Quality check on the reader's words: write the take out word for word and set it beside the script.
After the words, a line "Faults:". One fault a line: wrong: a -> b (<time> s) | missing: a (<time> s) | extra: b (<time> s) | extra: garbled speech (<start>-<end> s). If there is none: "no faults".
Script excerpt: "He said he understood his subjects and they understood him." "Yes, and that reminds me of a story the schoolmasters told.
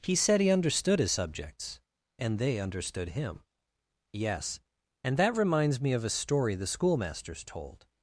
"He said he understood his subjects and they understood him." "Yes, and that reminds me of a story the schoolmasters told.
Faults:
no faults